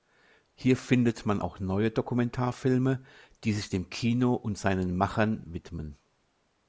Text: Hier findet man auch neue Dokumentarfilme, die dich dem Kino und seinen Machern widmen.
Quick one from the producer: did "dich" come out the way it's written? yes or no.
no